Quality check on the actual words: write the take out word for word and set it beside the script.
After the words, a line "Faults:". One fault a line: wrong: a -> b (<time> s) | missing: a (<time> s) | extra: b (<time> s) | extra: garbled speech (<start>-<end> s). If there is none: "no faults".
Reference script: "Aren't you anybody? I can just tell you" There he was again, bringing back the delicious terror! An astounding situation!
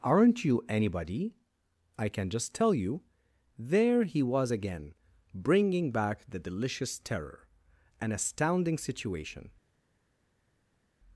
"Aren't you anybody? I can just tell you" There he was again, bringing back the delicious terror! An astounding situation!
Faults:
no faults